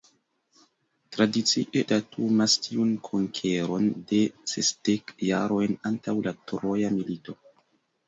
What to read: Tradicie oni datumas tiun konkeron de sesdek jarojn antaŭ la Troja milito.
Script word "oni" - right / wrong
wrong